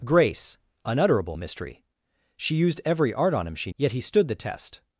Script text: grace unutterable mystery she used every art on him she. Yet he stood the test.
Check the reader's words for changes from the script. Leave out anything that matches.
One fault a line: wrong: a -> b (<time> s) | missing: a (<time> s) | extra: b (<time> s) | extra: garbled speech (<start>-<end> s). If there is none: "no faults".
no faults